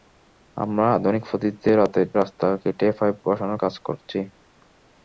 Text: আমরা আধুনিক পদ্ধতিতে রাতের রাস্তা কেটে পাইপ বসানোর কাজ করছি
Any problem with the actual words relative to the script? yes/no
no